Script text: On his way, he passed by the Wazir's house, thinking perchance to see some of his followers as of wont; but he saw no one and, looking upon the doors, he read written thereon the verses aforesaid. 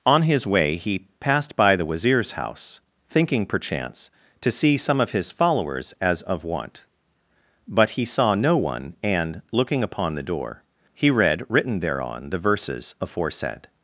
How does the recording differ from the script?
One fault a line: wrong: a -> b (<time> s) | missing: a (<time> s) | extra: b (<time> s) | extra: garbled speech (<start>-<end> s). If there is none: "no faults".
wrong: doors -> door (10.2 s)